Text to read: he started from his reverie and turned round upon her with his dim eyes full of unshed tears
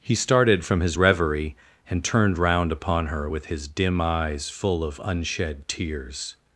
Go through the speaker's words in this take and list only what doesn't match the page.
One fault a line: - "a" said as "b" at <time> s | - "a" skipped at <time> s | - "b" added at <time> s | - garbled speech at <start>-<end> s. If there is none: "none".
none